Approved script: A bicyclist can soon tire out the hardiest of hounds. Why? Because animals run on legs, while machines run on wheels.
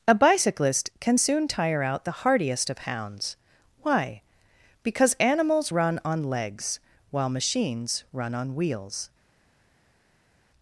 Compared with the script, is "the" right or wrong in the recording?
right